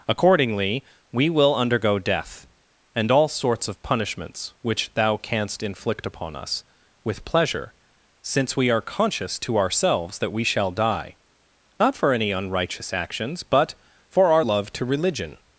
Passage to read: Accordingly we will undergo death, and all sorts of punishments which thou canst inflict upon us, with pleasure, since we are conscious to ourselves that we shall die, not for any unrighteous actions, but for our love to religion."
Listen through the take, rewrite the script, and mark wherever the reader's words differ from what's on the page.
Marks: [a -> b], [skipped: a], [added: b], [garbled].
Accordingly we will undergo death, and all sorts of punishments which thou canst inflict upon us, with pleasure, since we are conscious to ourselves that we shall die, not for any unrighteous actions, but for our love to religion."